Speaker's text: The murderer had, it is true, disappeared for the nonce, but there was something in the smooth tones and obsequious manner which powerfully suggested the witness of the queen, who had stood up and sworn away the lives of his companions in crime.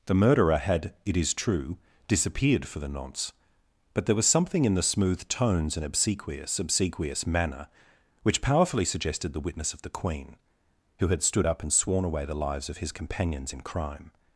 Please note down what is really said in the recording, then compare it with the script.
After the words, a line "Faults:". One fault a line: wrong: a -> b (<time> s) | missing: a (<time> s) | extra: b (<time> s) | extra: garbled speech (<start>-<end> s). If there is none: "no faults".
The murderer had, it is true, disappeared for the nonce, but there was something in the smooth tones and obsequious obsequious manner which powerfully suggested the witness of the queen, who had stood up and sworn away the lives of his companions in crime.
Faults:
extra: obsequious (6.6 s)